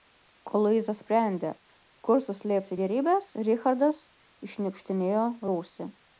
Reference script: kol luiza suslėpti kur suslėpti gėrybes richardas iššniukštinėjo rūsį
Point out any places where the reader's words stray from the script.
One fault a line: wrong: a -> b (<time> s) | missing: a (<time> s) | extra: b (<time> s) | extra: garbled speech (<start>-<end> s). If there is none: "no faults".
wrong: suslėpti -> sprendė (1.0 s)